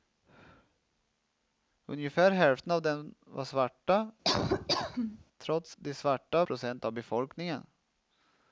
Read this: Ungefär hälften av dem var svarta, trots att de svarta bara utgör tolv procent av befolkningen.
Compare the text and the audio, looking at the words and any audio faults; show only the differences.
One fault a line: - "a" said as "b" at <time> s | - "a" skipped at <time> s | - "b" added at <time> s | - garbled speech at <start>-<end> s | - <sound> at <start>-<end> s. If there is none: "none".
- laugh at 4.2-5.3 s
- "att" skipped at 5.8 s
- "bara utgör tolv" skipped at 6.5 s